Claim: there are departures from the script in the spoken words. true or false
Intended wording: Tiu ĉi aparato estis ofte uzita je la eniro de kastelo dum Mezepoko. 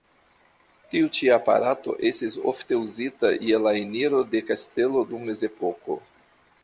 false